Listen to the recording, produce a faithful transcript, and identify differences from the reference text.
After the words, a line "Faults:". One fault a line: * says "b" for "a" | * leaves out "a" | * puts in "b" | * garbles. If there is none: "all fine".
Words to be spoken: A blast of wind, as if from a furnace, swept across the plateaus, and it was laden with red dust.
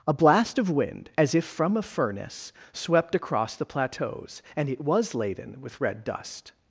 A blast of wind, as if from a furnace, swept across the plateaus, and it was laden with red dust.
Faults:
all fine